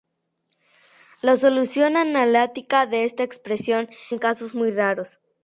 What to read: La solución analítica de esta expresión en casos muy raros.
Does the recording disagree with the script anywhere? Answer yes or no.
no